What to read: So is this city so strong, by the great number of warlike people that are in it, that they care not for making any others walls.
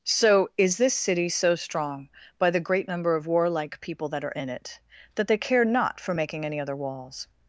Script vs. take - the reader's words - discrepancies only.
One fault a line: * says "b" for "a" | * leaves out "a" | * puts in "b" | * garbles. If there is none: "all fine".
* says "other" for "others"